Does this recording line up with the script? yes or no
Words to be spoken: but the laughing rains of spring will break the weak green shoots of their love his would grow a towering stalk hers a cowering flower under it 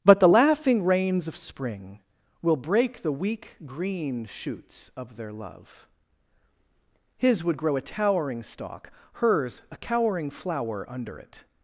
yes